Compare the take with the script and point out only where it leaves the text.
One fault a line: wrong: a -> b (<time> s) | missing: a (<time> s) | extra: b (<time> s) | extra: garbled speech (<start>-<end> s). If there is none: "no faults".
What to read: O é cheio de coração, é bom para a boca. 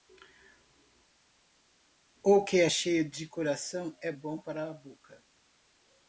extra: que (2.4 s)